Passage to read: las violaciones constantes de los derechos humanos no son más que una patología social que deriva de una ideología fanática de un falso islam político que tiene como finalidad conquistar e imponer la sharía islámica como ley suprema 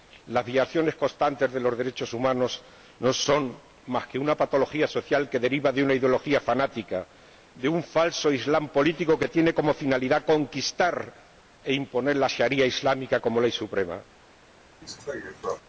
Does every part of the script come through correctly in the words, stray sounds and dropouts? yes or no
no